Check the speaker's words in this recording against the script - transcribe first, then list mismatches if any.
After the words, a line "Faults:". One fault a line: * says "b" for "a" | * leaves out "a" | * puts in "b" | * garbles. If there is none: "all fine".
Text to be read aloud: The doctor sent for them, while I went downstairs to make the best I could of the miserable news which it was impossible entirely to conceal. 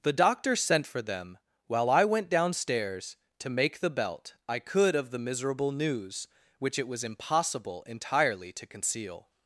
The doctor sent for them, while I went downstairs to make the belt I could of the miserable news which it was impossible entirely to conceal.
Faults:
* says "belt" for "best"